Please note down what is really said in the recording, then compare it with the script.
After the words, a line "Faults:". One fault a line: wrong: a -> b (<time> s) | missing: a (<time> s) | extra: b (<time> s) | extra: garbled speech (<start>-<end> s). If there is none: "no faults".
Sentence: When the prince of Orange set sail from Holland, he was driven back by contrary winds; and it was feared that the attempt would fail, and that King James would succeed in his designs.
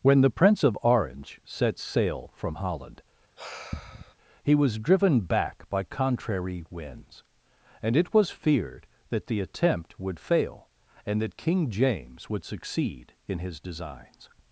When the prince of Orange set sail from Holland, he was driven back by contrary winds; and it was feared that the attempt would fail, and that King James would succeed in his designs.
Faults:
no faults